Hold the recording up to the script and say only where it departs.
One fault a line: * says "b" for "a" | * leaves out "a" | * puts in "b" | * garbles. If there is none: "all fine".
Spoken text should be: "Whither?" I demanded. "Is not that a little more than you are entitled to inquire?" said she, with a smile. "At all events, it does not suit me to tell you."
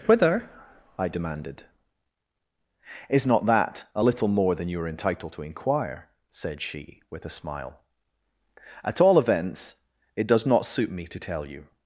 all fine